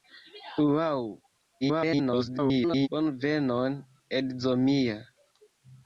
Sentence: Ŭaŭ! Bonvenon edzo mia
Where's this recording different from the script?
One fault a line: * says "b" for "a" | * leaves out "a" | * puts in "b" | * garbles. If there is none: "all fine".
* garbles